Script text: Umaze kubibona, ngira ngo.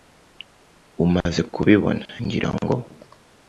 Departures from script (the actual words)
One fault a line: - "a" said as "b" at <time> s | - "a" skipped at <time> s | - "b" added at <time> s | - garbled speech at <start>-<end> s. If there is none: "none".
none